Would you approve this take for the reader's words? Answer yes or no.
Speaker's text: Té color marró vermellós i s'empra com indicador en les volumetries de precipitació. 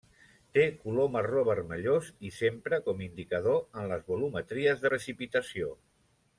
no